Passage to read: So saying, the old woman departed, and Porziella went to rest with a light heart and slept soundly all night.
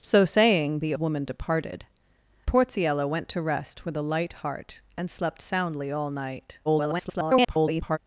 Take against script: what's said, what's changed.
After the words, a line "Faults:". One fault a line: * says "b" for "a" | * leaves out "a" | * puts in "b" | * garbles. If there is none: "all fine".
So saying, the woman departed, Porziella went to rest with a light heart and slept soundly all night. [garbled]
Faults:
* leaves out "old"
* leaves out "and"
* garbles